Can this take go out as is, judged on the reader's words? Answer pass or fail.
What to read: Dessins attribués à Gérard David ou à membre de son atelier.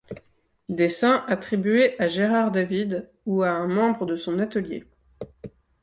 fail